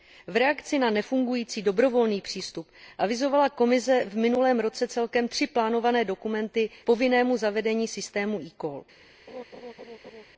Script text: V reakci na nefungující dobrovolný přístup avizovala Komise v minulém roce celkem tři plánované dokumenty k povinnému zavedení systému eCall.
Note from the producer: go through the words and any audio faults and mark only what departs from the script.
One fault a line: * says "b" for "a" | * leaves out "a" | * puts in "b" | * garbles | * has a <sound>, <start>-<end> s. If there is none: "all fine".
* leaves out "k"
* has a laugh, 9.3-10.2 s